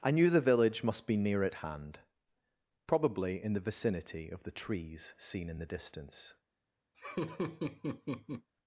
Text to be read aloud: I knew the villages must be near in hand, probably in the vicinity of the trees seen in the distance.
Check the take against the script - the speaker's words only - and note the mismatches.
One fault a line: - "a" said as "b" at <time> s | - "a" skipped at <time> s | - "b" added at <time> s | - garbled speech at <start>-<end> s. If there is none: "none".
- "villages" said as "village" at 0.4 s
- "in" said as "at" at 1.4 s